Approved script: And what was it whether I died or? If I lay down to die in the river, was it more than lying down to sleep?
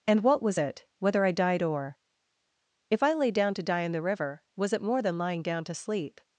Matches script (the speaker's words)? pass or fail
pass